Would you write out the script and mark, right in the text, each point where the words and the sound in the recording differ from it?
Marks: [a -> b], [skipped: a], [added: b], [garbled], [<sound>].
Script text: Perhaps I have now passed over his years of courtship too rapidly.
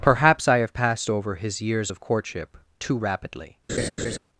Perhaps I have [skipped: now] passed over his years of courtship too rapidly. [laugh]